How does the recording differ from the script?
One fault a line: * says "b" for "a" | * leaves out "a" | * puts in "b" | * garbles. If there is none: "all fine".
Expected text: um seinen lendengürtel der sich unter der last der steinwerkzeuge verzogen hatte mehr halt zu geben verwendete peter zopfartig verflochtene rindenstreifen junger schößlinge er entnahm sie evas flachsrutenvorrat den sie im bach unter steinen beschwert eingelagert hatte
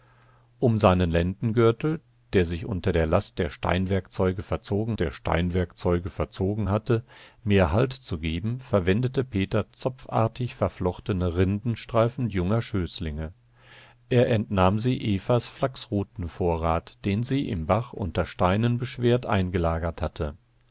* puts in "der steinwerkzeuge verzogen"